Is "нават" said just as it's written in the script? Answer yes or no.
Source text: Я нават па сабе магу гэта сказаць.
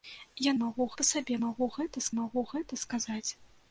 no